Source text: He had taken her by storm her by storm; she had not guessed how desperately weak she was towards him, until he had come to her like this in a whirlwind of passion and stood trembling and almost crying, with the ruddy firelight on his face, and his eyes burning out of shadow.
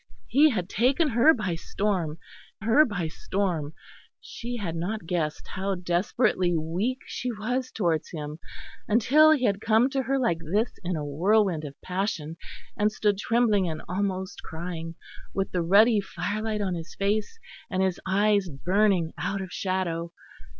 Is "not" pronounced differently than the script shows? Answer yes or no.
no